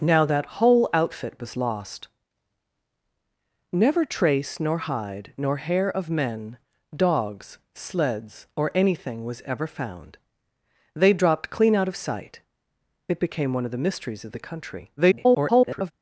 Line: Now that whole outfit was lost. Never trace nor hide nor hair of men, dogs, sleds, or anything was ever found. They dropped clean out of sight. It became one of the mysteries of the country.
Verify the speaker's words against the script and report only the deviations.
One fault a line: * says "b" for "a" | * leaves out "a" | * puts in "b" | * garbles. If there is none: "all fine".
* garbles